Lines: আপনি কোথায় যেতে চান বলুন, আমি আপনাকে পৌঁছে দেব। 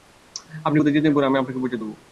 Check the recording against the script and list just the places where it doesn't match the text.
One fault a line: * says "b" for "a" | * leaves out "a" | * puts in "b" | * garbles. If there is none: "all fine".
all fine